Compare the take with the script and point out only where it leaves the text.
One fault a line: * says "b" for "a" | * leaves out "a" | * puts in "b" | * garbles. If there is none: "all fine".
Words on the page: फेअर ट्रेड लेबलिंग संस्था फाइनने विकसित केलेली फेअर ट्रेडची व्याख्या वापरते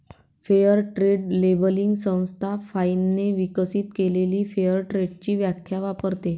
all fine